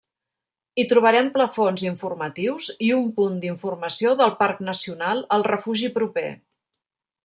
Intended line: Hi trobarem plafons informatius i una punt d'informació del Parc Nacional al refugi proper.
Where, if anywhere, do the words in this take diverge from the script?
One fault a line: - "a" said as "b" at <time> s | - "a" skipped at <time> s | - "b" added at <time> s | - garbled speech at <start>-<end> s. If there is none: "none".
- "una" said as "un" at 3.0 s